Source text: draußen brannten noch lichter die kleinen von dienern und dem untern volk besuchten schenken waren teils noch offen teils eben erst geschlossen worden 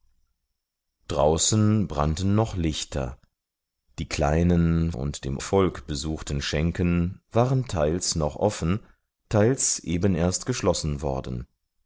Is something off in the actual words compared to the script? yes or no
yes